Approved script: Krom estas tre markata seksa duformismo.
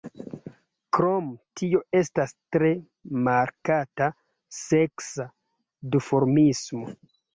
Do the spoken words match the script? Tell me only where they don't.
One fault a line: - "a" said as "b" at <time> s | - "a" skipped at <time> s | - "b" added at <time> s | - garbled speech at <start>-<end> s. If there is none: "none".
- "tio" added at 1.6 s